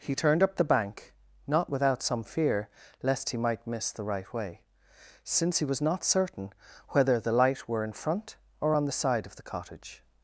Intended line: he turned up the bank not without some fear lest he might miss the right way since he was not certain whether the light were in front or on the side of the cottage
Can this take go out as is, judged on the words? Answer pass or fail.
pass